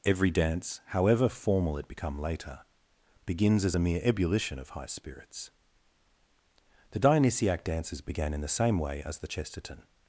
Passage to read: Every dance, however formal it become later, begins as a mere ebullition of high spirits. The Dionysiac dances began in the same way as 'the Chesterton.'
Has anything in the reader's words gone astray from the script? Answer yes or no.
no